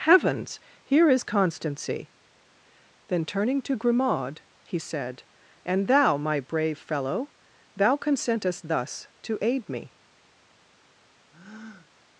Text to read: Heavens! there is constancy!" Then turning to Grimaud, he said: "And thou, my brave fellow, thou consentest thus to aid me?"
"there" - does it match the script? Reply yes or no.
no